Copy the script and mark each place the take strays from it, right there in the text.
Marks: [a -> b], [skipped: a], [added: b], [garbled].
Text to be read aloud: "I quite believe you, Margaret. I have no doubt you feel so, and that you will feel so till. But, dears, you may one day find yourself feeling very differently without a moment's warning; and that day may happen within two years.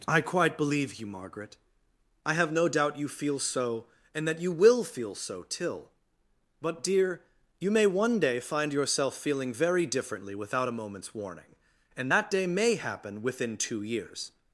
"I quite believe you, Margaret. I have no doubt you feel so, and that you will feel so till. But, [dears, -> dear] you may one day find yourself feeling very differently without a moment's warning; and that day may happen within two years.